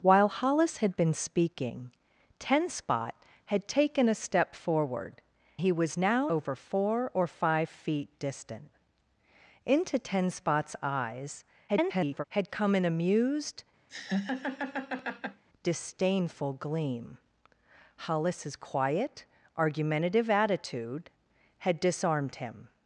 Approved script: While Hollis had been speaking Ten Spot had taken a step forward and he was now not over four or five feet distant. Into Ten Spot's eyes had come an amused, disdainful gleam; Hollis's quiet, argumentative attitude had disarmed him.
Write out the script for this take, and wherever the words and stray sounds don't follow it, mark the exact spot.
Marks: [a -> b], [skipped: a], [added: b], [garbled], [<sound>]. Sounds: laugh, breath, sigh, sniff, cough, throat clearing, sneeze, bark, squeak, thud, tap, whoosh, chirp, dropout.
While Hollis had been speaking Ten Spot had taken a step forward [skipped: and] he was now [skipped: not] over four or five feet distant. Into Ten Spot's eyes [garbled] had come an amused, [laugh] disdainful gleam; Hollis's quiet, argumentative attitude had disarmed him.